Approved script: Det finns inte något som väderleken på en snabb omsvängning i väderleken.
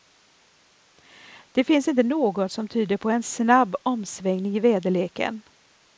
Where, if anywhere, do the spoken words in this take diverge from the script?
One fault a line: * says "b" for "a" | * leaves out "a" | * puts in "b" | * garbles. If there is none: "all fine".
* says "tyder" for "väderleken"